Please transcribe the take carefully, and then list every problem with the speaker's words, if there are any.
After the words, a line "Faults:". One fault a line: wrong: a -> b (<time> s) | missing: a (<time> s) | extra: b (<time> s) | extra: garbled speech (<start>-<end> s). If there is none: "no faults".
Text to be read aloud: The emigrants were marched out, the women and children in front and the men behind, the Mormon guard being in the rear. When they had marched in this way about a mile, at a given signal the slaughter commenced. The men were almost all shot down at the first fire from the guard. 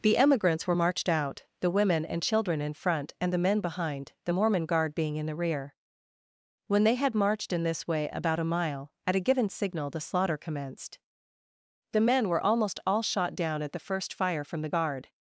The emigrants were marched out, the women and children in front and the men behind, the Mormon guard being in the rear. When they had marched in this way about a mile, at a given signal the slaughter commenced. The men were almost all shot down at the first fire from the guard.
Faults:
no faults